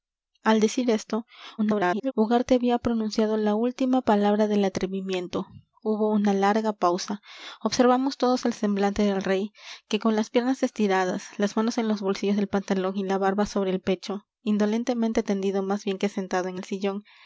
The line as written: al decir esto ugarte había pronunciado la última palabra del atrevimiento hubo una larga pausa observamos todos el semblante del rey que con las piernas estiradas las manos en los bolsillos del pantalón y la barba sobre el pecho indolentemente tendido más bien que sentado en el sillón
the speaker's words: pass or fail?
fail